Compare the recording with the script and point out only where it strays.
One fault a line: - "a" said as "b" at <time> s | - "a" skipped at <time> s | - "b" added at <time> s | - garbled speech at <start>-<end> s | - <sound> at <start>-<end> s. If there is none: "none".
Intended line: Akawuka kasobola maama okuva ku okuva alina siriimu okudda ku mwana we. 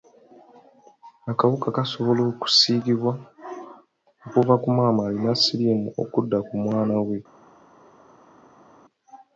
- "maama" said as "okusiigibwa" at 2.3 s
- "okuva" said as "maama" at 4.8 s